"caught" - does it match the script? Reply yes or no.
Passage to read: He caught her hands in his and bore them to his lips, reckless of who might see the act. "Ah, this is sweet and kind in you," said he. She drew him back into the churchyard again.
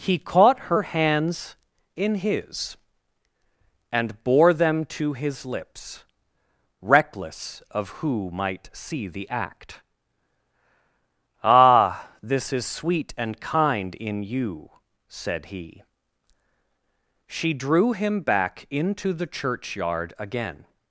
yes